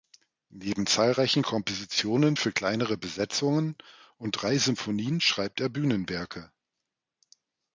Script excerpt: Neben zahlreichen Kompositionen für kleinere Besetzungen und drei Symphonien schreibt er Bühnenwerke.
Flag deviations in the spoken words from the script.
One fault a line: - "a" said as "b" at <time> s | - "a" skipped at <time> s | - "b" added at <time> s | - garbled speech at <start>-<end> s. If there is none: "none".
none